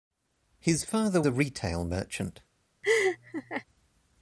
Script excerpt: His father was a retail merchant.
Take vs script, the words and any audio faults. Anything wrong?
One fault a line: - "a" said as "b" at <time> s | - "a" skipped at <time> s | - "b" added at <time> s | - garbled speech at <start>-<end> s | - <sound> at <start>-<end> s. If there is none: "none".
- "was" skipped at 1.2 s
- laugh at 2.8-3.6 s